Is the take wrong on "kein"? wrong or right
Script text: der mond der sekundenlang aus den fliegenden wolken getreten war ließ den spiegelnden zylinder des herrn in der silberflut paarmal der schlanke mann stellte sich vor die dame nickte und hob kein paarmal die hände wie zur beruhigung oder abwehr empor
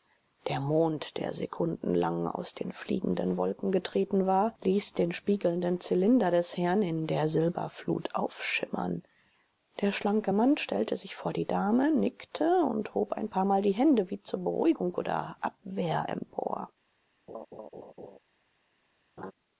wrong